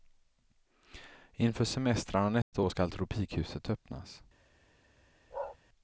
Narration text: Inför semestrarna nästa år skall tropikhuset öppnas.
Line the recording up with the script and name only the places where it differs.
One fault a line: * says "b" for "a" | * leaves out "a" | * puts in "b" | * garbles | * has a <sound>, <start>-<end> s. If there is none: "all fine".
* has a dropout, 2.4-2.5 s
* has a bark, 5.3-5.6 s